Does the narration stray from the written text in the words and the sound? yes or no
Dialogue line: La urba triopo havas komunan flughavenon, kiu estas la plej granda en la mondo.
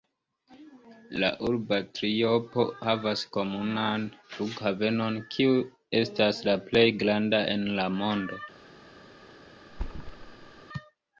yes